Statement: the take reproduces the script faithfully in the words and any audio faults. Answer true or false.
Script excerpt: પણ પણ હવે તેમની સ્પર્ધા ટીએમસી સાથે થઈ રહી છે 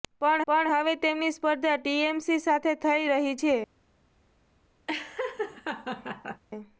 false